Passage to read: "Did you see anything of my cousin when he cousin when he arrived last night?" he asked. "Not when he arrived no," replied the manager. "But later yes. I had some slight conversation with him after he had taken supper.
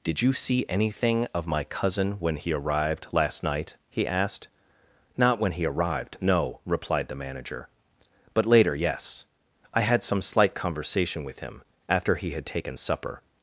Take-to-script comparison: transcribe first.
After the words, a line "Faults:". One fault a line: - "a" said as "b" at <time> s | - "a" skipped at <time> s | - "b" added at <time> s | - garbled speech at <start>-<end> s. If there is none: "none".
"Did you see anything of my cousin when he arrived last night?" he asked. "Not when he arrived no," replied the manager. "But later yes. I had some slight conversation with him after he had taken supper.
Faults:
- "cousin when he" skipped at 2.5 s